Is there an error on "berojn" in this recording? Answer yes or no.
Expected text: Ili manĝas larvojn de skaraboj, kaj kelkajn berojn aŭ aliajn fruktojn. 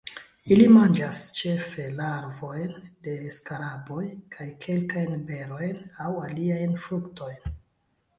no